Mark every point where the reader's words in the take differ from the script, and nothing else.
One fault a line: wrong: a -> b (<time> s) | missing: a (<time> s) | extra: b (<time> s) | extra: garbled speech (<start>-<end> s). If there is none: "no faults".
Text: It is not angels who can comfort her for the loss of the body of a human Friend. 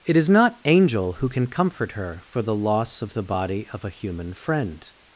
wrong: angels -> angel (0.7 s)